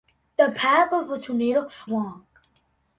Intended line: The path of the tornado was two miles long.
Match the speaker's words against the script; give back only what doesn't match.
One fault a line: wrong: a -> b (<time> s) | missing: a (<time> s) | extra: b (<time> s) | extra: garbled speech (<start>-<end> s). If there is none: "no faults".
missing: was two miles (1.7 s)